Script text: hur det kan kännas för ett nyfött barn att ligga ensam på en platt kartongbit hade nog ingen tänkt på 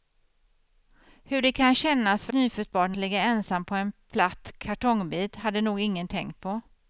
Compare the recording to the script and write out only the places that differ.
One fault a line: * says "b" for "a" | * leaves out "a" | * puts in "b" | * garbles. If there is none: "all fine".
* leaves out "ett"
* leaves out "att"